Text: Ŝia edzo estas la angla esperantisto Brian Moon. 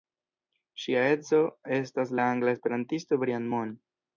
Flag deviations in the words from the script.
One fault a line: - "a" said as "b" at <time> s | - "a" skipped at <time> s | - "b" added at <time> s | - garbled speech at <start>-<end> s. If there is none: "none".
none